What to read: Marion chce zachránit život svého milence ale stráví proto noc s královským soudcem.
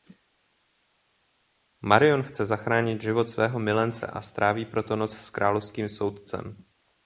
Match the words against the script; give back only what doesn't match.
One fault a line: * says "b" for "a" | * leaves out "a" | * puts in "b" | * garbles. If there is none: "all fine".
* says "a" for "ale"